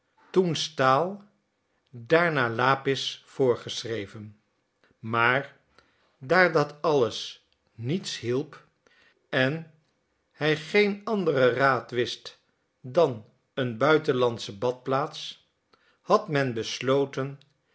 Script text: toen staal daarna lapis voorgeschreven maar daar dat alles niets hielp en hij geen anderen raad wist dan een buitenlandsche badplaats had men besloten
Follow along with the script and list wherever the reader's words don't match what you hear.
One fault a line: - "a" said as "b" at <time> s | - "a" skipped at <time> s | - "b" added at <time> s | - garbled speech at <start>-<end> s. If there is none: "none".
none